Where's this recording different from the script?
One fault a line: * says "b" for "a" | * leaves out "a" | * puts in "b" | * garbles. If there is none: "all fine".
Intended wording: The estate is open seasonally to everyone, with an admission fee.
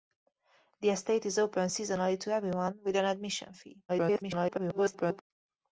* garbles